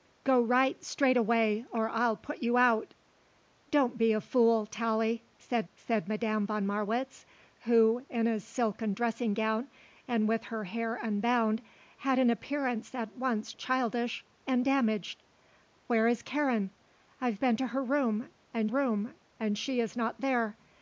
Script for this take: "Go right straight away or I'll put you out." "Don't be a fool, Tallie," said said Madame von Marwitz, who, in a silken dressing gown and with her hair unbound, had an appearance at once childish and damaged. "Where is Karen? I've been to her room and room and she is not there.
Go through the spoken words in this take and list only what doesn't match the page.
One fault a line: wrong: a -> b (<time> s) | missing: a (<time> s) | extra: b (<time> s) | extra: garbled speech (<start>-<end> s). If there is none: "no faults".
no faults